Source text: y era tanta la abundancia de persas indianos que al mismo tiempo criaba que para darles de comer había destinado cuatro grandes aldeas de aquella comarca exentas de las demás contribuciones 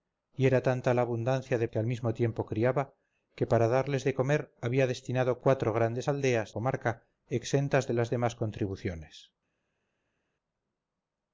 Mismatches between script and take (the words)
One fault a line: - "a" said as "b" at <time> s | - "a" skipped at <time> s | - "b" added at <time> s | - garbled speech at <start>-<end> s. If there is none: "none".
- "persas indianos" skipped at 1.7 s
- "de aquella" skipped at 6.6 s